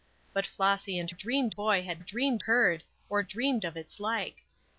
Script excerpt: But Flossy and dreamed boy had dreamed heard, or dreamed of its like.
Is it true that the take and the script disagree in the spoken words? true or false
false